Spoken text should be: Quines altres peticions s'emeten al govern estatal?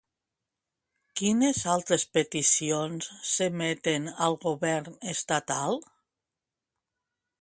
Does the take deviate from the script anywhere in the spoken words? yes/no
no